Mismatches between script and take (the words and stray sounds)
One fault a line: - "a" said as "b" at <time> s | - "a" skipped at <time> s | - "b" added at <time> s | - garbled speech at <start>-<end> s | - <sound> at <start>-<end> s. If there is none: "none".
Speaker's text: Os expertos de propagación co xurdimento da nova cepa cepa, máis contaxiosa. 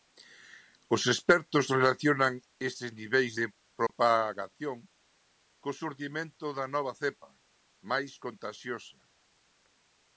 - "relacionan estes niveis" added at 1.8 s
- dropout at 3.9-3.9 s
- "cepa" skipped at 7.3 s